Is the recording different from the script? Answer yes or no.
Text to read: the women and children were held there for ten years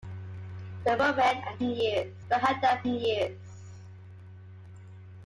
yes